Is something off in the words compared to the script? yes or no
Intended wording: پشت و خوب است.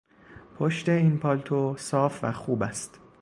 yes